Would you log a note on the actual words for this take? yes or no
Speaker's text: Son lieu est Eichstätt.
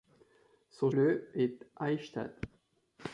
no